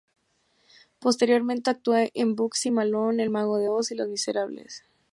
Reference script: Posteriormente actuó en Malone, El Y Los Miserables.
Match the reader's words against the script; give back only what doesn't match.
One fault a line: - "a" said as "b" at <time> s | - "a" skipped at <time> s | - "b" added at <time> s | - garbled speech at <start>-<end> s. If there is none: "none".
- "Bugsy" added at 2.4 s
- "Mago de Oz" added at 3.3 s